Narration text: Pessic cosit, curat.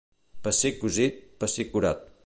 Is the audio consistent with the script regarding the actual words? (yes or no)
no